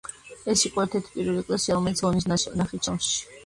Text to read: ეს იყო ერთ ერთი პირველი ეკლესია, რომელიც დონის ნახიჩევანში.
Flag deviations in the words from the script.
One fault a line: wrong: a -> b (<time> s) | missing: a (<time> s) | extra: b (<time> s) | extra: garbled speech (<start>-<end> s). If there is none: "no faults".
no faults